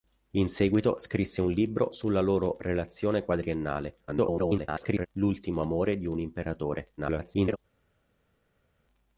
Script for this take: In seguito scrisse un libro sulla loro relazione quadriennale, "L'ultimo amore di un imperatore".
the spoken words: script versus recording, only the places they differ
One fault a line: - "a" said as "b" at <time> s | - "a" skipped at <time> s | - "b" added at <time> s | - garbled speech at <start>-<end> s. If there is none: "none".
- garbled speech at 4.1-5.1 s
- garbled speech at 7.0-7.6 s